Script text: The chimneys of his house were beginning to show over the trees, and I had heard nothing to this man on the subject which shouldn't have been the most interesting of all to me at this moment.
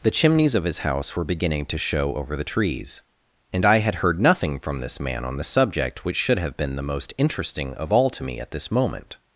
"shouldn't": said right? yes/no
no